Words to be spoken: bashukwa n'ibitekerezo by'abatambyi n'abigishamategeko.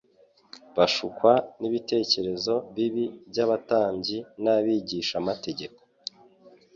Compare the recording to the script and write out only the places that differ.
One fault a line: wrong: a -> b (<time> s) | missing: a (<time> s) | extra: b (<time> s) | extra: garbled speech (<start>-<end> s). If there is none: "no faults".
extra: bibi (2.8 s)